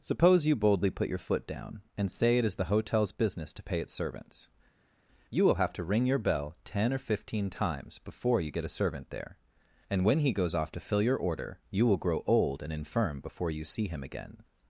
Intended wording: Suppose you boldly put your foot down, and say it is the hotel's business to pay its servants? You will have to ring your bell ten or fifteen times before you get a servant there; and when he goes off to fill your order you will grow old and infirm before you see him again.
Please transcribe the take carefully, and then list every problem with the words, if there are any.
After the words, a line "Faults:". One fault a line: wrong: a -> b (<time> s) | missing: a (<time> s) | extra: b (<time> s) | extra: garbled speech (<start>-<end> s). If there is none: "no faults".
Suppose you boldly put your foot down, and say it is the hotel's business to pay its servants? You will have to ring your bell ten or fifteen times before you get a servant there; and when he goes off to fill your order you will grow old and infirm before you see him again.
Faults:
no faults